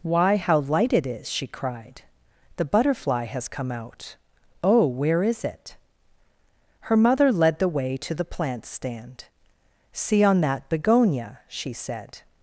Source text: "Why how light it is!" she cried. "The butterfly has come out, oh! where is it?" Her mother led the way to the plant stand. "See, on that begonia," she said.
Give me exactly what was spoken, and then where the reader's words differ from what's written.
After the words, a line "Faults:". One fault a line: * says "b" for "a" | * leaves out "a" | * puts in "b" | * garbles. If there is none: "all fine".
"Why how light it is!" she cried. "The butterfly has come out, oh! where is it?" Her mother led the way to the plant stand. "See, on that begonia," she said.
Faults:
all fine